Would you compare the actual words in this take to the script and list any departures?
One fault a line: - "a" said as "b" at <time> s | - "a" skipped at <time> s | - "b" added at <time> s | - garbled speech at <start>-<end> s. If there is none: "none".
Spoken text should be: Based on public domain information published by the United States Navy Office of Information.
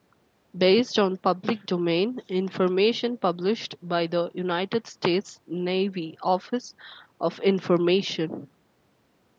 none